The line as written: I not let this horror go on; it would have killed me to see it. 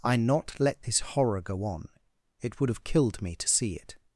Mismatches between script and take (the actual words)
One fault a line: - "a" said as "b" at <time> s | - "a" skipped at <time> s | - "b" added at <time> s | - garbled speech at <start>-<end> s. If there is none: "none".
none